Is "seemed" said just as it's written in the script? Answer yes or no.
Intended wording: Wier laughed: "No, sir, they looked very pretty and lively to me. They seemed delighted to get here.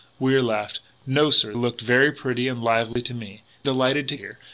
no